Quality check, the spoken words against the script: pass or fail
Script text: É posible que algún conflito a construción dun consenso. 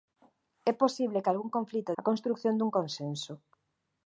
pass